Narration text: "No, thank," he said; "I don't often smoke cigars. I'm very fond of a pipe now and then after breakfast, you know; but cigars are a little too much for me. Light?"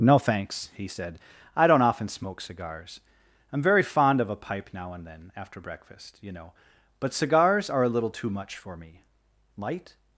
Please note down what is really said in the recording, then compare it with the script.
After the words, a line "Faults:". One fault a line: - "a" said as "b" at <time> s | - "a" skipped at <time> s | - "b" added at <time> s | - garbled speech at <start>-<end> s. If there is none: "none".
"No, thanks," he said; "I don't often smoke cigars. I'm very fond of a pipe now and then after breakfast, you know; but cigars are a little too much for me. Light?"
Faults:
- "thank" said as "thanks" at 0.2 s